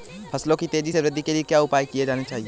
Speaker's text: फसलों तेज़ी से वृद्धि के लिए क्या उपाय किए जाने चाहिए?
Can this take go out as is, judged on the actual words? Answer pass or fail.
fail